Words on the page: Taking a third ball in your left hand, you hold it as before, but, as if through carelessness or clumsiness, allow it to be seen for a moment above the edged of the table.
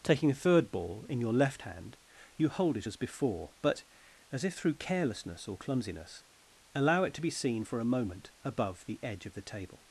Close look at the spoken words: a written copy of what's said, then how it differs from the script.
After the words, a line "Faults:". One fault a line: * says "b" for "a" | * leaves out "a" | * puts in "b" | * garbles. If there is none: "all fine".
Taking a third ball in your left hand, you hold it as before, but, as if through carelessness or clumsiness, allow it to be seen for a moment above the edge of the table.
Faults:
* says "edge" for "edged"